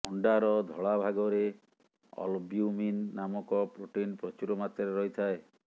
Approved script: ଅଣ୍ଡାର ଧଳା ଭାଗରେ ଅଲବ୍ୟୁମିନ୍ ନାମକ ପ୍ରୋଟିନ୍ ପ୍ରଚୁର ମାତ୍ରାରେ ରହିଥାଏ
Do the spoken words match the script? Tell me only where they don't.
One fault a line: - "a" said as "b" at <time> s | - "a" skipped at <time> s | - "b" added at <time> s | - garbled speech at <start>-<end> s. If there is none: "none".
none